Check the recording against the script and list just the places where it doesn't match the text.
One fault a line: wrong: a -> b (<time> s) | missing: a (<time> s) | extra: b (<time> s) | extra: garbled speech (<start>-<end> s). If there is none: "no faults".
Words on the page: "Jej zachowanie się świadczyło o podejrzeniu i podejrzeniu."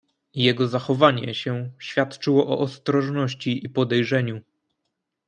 wrong: Jej -> Jego (0.3 s)
wrong: podejrzeniu -> ostrożności (2.6 s)